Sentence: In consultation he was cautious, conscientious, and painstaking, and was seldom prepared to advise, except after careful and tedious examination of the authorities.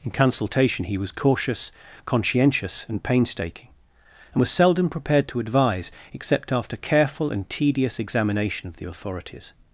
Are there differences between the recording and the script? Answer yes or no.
no